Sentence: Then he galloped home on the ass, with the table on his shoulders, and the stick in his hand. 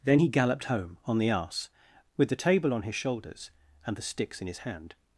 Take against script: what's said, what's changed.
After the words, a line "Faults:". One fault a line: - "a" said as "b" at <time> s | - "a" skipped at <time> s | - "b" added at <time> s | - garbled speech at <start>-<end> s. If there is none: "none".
Then he galloped home on the ass, with the table on his shoulders, and the sticks in his hand.
Faults:
- "stick" said as "sticks" at 4.0 s